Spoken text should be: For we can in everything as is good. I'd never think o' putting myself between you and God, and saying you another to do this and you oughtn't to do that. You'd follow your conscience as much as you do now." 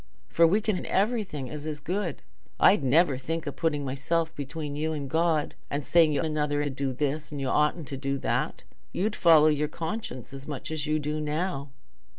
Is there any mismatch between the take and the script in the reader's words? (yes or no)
no